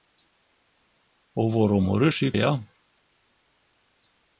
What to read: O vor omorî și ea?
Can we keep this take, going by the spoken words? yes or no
yes